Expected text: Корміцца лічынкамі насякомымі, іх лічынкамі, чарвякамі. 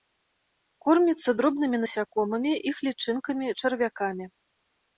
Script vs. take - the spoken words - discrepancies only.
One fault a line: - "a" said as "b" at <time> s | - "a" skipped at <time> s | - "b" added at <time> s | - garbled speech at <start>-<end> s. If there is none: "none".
- "лічынкамі" said as "дробнымі" at 1.4 s